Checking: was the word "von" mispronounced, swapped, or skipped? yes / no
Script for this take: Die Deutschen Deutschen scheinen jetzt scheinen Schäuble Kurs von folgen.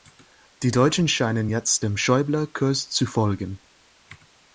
yes